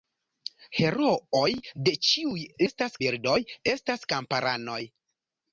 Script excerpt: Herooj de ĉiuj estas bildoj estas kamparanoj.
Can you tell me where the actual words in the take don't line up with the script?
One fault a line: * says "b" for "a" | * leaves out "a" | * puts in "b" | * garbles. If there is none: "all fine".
all fine